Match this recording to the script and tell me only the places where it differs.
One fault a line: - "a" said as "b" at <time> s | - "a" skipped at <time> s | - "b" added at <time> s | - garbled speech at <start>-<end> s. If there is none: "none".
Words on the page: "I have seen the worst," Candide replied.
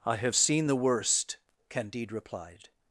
none